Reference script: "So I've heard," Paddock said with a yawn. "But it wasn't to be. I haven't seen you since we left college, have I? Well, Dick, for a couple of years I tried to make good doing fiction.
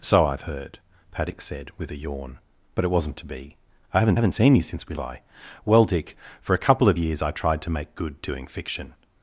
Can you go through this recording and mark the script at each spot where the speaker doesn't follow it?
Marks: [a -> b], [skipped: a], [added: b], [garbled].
"So I've heard," Paddock said with a yawn. "But it wasn't to be. I haven't [added: haven't] seen you since we [skipped: left college, have] I? Well, Dick, for a couple of years I tried to make good doing fiction.